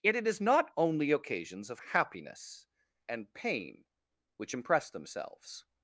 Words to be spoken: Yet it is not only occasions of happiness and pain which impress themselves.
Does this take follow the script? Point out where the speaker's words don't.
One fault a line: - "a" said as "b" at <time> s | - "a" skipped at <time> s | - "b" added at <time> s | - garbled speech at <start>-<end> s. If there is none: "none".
none